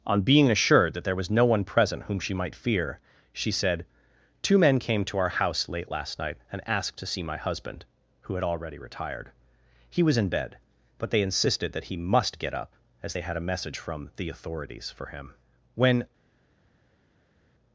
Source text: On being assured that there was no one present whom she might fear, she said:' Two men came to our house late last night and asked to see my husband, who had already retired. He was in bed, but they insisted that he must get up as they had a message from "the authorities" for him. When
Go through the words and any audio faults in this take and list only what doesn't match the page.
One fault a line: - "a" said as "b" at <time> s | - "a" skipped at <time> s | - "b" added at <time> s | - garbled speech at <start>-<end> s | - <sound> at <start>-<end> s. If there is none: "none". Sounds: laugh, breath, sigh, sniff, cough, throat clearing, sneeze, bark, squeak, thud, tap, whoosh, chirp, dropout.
none